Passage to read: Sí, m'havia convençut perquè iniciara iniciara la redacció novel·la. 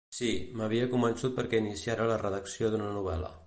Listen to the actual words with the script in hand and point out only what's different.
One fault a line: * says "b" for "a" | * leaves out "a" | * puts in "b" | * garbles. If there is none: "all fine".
* leaves out "iniciara"
* puts in "d'una"